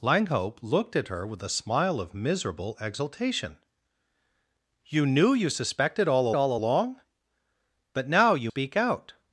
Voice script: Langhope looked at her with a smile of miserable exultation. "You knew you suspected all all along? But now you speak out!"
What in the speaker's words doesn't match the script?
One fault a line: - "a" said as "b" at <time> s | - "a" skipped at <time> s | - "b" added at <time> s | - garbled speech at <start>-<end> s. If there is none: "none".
none